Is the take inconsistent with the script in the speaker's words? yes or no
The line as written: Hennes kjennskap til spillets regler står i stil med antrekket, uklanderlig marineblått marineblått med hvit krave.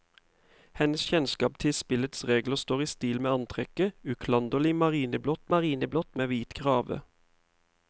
no